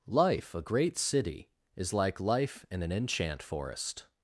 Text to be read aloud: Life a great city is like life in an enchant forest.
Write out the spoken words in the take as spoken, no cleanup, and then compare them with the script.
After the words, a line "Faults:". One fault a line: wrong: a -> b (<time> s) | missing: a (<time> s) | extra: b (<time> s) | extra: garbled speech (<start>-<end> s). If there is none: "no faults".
Life a great city is like life in an enchant forest.
Faults:
no faults